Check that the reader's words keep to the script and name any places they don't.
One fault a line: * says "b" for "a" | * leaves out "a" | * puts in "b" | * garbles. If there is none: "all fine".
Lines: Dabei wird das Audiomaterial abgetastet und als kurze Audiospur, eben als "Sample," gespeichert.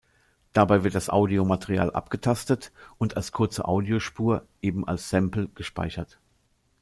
all fine